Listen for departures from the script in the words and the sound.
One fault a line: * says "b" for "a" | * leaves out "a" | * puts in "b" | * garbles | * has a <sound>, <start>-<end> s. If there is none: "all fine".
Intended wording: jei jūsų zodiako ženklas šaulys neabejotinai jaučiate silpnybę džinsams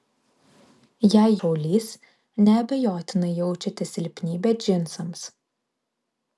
* leaves out "jūsų zodiako ženklas"